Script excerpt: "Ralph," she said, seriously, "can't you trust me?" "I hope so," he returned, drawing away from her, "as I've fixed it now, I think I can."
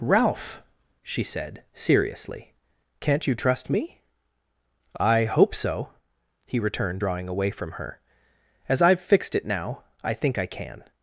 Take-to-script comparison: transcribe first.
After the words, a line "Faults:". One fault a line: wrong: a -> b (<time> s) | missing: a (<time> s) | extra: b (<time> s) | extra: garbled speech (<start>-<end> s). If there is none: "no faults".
"Ralph," she said, seriously, "can't you trust me?" "I hope so," he returned, drawing away from her, "as I've fixed it now, I think I can."
Faults:
no faults